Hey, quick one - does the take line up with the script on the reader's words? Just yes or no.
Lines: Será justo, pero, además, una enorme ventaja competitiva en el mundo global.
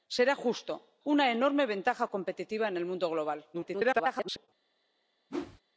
no